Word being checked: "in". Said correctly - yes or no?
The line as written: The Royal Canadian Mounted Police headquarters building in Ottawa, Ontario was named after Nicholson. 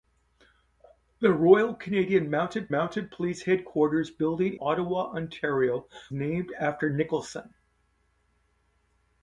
no